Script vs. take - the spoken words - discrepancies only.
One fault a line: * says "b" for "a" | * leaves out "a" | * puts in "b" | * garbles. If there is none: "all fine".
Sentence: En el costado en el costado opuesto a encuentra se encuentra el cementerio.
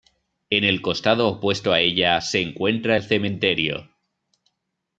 * leaves out "en el costado"
* says "ella" for "encuentra"